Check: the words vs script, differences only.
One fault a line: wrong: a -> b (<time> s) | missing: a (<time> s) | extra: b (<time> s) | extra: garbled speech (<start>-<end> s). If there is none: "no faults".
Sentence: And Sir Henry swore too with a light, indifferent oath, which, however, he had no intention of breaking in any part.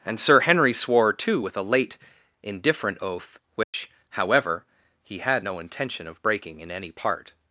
wrong: light -> late (1.6 s)